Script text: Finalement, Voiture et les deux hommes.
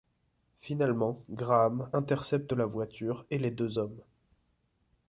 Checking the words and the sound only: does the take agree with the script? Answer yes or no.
no